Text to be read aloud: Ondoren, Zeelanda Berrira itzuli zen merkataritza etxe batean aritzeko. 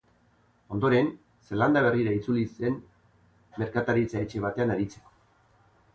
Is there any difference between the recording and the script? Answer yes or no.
no